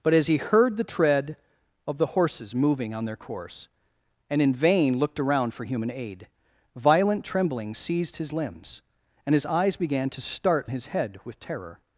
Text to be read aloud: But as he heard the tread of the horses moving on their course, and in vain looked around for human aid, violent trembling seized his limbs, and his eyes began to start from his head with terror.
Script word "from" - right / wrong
wrong